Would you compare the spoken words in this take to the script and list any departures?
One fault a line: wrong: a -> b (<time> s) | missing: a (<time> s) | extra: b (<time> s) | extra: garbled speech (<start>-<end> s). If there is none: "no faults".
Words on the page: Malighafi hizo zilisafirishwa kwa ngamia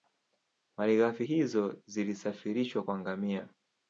no faults